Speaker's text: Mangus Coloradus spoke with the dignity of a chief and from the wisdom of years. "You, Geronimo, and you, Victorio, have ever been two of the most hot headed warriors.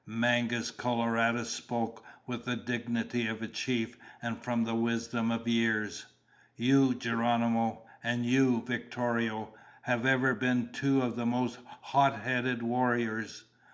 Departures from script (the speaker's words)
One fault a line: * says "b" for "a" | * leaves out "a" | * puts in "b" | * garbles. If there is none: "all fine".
all fine